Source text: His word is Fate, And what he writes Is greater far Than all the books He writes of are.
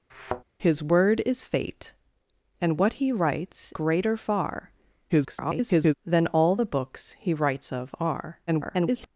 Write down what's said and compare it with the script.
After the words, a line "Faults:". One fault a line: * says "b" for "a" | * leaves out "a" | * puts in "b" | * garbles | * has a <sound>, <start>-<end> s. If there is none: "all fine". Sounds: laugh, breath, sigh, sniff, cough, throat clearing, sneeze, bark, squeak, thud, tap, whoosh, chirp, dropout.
His word is Fate, And what he writes Greater far [garbled] Than all the books He writes of are. [garbled]
Faults:
* has a thud, 0.1-0.4 s
* leaves out "Is"
* garbles
* garbles